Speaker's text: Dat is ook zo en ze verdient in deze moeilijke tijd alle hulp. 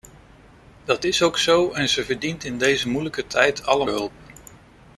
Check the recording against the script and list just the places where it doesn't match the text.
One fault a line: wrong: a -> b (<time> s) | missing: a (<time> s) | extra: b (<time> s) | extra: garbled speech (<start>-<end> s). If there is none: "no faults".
no faults